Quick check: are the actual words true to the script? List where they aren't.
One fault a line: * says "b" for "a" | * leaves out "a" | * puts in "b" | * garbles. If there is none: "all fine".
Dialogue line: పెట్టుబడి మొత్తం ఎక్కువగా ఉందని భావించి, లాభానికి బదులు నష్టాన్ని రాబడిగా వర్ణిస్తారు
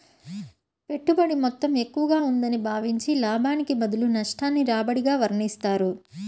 all fine